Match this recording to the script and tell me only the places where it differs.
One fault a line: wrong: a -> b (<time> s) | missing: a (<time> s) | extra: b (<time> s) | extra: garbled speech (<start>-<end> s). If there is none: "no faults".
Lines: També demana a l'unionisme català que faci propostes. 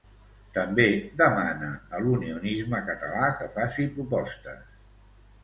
no faults